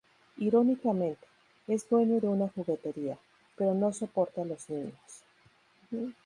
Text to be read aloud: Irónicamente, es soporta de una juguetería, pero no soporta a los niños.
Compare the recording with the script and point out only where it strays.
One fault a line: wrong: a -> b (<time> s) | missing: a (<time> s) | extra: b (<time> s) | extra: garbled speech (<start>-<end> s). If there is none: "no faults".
wrong: soporta -> dueño (1.9 s)